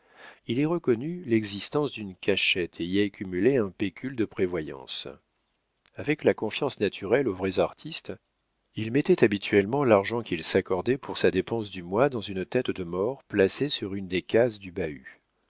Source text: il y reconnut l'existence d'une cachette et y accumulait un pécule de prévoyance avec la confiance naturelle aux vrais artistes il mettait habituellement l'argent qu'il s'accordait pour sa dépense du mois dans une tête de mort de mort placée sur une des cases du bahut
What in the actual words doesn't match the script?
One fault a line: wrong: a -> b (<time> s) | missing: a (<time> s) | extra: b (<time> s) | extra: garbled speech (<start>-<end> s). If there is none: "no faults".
missing: de mort (13.2 s)